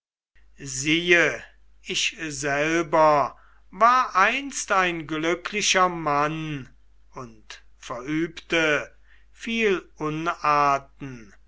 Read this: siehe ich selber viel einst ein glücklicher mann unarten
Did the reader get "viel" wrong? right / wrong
wrong